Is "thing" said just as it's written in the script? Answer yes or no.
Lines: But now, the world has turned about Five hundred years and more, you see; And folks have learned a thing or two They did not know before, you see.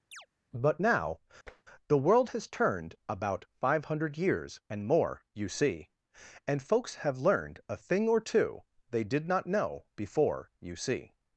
yes